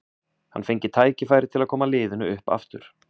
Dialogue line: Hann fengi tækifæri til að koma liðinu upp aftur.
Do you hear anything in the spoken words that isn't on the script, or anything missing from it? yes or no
no